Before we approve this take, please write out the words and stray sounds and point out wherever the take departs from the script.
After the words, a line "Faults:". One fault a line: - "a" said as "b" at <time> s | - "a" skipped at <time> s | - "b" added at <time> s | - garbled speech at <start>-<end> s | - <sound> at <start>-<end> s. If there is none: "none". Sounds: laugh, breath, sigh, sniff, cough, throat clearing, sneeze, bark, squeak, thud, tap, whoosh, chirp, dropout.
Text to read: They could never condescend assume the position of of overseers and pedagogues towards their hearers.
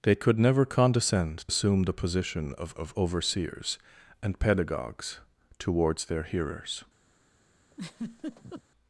They could never condescend assume the position of of overseers and pedagogues towards their hearers.
Faults:
- laugh at 7.7-8.6 s